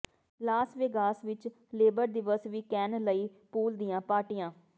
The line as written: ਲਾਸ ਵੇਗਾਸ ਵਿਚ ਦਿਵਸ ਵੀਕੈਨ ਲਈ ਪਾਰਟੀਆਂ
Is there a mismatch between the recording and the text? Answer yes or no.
yes